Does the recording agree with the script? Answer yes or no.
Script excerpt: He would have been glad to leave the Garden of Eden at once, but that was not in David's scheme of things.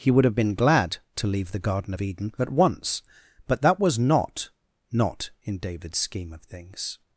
no